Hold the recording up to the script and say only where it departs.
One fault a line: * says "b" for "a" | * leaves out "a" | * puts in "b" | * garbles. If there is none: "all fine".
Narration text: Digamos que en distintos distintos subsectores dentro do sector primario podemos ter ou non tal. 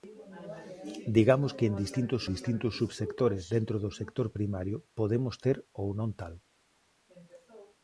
all fine